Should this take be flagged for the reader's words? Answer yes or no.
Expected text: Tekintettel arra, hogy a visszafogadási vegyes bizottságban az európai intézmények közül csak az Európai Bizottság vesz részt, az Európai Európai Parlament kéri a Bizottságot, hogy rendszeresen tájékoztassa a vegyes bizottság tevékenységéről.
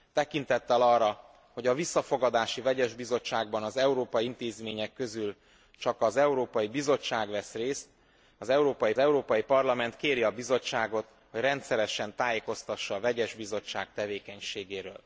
no